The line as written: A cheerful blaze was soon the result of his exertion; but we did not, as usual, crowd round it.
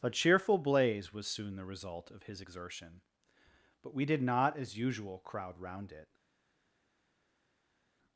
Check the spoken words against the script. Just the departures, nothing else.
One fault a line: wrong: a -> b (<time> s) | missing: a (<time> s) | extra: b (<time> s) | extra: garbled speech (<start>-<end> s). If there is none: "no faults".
no faults